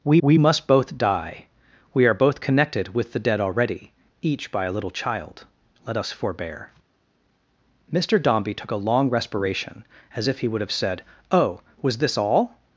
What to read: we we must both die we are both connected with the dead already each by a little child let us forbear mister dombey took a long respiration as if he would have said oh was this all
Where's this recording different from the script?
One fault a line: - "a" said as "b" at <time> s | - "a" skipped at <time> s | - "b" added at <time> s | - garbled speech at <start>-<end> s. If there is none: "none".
none